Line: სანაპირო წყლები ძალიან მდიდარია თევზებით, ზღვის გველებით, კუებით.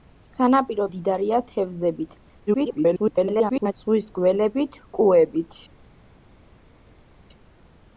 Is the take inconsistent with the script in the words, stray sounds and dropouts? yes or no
yes